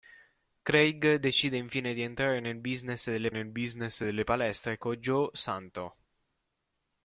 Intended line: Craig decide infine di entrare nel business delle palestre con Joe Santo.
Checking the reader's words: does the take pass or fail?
fail